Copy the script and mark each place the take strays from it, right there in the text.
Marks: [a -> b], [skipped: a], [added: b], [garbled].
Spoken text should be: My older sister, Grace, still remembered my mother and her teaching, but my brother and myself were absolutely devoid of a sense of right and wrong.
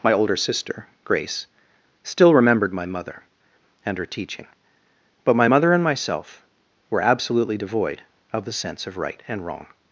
My older sister, Grace, still remembered my mother and her teaching, but my [brother -> mother] and myself were absolutely devoid of [a -> the] sense of right and wrong.